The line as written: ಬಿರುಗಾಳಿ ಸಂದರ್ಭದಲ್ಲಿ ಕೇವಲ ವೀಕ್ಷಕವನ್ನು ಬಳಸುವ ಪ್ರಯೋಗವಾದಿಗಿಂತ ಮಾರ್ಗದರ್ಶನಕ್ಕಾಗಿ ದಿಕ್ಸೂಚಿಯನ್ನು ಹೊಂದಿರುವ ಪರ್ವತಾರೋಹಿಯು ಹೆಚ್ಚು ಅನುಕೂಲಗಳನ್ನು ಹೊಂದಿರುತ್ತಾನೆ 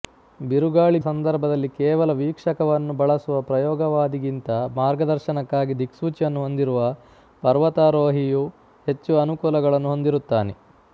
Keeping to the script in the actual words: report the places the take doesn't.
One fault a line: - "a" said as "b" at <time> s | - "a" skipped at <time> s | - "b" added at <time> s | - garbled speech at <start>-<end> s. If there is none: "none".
none